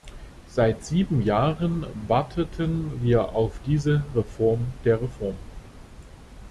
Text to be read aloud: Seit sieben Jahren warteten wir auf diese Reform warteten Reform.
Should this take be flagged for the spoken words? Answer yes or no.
yes